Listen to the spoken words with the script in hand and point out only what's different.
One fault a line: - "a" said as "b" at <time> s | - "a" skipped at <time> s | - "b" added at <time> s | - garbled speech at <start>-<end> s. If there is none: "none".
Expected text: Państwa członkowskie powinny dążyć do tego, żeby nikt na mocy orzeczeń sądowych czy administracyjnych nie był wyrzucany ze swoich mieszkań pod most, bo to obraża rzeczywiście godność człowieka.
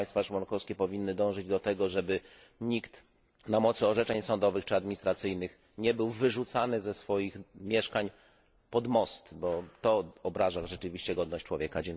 none